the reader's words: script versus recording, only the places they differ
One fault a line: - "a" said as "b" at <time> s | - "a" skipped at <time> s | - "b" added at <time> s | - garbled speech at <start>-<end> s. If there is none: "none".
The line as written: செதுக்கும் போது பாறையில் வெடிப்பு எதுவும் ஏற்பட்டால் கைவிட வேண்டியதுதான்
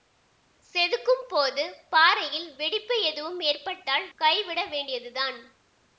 none